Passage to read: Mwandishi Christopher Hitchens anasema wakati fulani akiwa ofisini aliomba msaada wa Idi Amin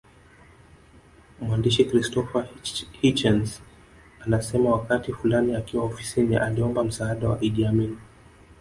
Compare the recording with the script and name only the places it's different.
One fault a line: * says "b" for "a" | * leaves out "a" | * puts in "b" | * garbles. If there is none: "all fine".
all fine